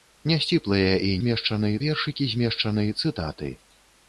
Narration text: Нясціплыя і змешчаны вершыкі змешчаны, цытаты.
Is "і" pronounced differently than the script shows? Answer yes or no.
no